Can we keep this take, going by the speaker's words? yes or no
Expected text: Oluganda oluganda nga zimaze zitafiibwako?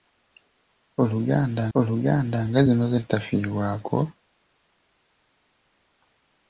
yes